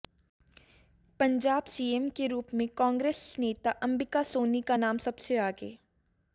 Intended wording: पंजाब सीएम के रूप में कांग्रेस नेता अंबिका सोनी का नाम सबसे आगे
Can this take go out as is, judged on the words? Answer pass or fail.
pass